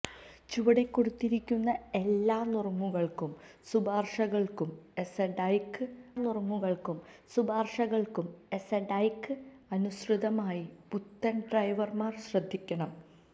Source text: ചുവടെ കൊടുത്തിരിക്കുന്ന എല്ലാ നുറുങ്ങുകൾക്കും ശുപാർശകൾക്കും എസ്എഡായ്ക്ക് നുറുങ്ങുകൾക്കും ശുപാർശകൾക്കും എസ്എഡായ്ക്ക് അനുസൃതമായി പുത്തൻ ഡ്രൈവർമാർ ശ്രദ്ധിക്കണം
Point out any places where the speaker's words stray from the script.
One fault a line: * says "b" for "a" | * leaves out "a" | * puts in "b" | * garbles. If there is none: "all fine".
all fine